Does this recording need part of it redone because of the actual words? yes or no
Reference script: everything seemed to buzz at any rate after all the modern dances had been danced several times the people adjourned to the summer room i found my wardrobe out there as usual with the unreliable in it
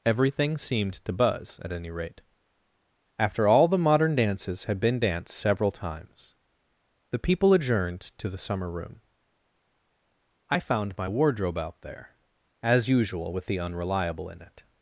no